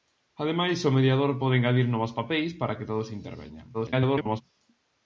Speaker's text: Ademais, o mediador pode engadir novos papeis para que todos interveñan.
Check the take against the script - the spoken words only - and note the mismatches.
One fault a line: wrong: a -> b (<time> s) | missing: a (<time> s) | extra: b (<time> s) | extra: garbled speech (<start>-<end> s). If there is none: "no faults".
extra: garbled speech (3.7-4.4 s)